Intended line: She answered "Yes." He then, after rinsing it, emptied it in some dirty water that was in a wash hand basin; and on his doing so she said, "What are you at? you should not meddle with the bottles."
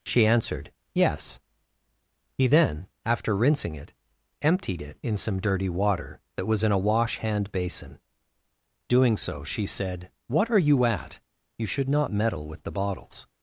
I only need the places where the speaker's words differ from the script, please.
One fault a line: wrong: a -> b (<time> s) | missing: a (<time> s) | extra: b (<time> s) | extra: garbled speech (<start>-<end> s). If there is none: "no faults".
missing: and on his (8.0 s)